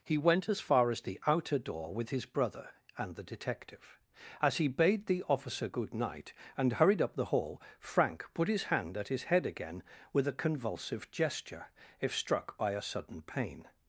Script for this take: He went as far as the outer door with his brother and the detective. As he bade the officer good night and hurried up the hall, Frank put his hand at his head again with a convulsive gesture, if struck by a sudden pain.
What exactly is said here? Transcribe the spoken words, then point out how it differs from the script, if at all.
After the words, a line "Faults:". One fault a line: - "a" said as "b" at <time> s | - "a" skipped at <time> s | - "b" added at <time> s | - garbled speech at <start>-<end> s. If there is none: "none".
He went as far as the outer door with his brother and the detective. As he bade the officer good night and hurried up the hall, Frank put his hand at his head again with a convulsive gesture, if struck by a sudden pain.
Faults:
none